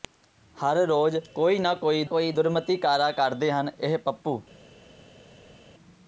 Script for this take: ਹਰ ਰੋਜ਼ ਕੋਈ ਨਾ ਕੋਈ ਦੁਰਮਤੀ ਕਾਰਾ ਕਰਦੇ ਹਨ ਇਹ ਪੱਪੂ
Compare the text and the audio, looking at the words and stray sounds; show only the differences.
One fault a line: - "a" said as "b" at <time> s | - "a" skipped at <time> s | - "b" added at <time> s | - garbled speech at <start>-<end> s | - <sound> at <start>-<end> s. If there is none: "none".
- "ਕੋਈ" added at 2.0 s